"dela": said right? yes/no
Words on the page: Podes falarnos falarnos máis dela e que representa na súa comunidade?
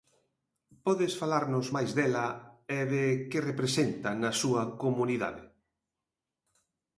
yes